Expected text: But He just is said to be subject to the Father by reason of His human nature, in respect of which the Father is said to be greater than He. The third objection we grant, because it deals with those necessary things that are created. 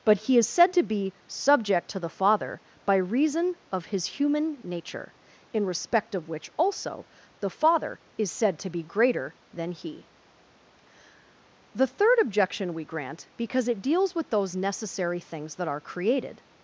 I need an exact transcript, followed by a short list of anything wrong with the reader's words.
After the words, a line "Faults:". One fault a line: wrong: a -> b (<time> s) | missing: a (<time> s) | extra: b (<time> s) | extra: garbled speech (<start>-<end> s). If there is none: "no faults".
But He is said to be subject to the Father by reason of His human nature, in respect of which also the Father is said to be greater than He. The third objection we grant, because it deals with those necessary things that are created.
Faults:
missing: just (0.4 s)
extra: also (6.6 s)